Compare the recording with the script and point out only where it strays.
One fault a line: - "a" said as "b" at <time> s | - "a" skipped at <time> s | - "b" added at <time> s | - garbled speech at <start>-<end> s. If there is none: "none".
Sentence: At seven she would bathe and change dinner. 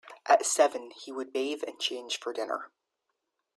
- "she" said as "he" at 1.0 s
- "for" added at 2.2 s